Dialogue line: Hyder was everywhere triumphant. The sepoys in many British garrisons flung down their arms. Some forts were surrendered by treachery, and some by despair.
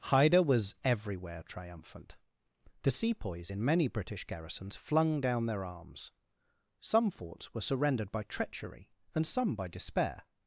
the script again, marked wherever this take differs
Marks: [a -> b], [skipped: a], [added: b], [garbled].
Hyder was everywhere triumphant. The sepoys in many British garrisons flung down their arms. Some forts were surrendered by treachery, and some by despair.